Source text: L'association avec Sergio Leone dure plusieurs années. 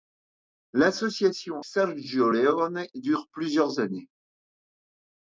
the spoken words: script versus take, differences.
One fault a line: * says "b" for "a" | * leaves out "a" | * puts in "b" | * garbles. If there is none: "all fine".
* leaves out "avec"